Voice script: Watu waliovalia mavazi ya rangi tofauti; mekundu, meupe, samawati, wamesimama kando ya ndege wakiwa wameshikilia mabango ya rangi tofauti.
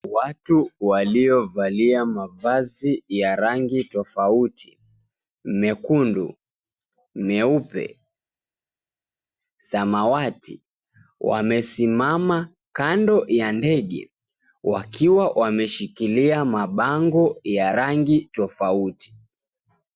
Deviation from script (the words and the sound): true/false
false